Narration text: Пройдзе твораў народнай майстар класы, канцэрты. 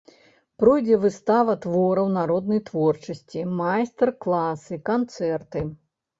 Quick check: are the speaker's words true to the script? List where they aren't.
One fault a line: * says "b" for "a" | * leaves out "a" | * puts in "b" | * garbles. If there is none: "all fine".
* puts in "выстава"
* puts in "творчасці"